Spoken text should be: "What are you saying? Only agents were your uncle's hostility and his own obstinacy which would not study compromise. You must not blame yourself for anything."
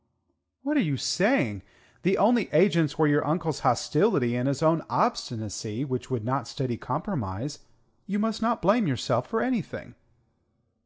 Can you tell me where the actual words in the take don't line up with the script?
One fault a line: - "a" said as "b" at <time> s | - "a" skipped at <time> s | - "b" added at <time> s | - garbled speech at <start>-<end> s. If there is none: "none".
- "The" added at 2.0 s